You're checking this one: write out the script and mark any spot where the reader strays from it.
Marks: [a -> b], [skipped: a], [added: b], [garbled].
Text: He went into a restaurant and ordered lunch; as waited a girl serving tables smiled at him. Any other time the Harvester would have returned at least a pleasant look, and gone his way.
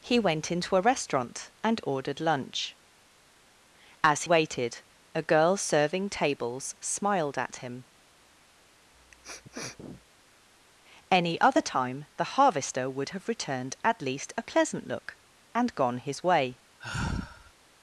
He went into a restaurant and ordered lunch; as waited a girl serving tables smiled at him. Any other time the Harvester would have returned at least a pleasant look, and gone his way.